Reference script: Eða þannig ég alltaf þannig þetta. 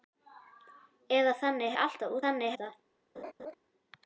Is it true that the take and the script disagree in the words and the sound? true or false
true